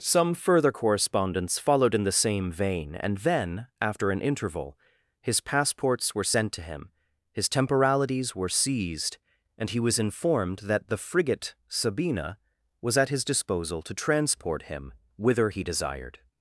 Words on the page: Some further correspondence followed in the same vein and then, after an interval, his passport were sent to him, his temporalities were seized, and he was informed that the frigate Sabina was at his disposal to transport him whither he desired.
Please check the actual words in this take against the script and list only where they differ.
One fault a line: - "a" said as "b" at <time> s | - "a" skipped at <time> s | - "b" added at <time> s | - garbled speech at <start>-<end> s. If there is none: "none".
- "passport" said as "passports" at 5.4 s